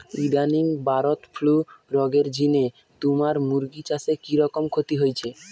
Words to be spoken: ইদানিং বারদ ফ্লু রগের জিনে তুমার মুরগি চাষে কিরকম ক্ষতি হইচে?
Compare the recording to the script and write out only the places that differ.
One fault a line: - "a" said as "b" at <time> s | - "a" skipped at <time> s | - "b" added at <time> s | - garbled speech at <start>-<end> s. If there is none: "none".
none